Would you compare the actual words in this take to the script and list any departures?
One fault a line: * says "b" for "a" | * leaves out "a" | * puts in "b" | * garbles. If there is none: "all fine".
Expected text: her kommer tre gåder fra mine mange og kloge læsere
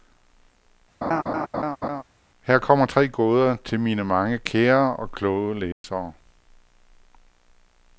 * says "til" for "fra"
* puts in "kære"